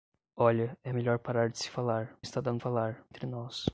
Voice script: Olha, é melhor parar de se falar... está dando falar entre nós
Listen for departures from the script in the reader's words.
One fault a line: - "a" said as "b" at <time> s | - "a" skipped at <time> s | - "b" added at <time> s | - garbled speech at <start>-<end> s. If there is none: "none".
none